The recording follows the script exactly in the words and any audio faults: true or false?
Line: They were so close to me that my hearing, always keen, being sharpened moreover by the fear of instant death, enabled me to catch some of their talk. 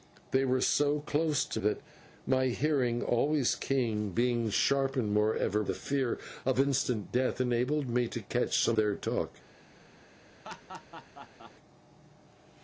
false